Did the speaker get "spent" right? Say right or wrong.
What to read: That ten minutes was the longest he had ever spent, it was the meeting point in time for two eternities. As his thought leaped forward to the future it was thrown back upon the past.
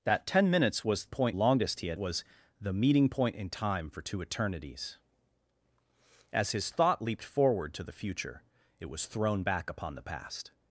wrong